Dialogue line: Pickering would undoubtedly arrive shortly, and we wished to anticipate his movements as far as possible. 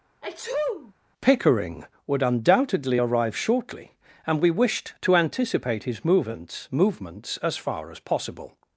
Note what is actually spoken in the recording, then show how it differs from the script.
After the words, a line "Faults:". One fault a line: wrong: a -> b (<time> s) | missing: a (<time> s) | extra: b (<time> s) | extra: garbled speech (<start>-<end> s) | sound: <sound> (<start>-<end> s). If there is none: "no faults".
Pickering would undoubtedly arrive shortly, and we wished to anticipate his movements movements as far as possible.
Faults:
sound: sneeze (0.2-0.9 s)
extra: movements (6.7 s)